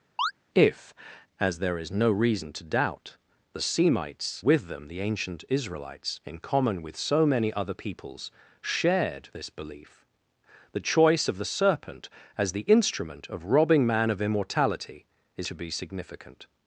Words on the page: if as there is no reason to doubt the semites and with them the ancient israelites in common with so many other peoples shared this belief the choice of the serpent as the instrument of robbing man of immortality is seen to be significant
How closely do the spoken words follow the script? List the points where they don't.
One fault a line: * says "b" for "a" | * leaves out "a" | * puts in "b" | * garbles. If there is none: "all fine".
* leaves out "and"
* leaves out "seen"